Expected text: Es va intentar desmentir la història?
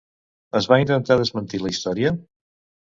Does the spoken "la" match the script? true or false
true